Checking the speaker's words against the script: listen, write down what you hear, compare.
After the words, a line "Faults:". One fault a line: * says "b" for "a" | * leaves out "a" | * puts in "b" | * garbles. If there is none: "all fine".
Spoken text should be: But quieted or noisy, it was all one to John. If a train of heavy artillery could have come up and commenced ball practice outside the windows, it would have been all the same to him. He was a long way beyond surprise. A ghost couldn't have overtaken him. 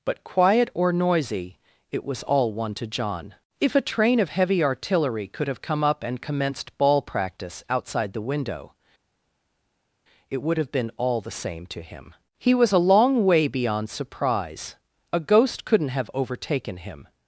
But quiet or noisy, it was all one to John. If a train of heavy artillery could have come up and commenced ball practice outside the window, it would have been all the same to him. He was a long way beyond surprise. A ghost couldn't have overtaken him.
Faults:
* says "quiet" for "quieted"
* says "window" for "windows"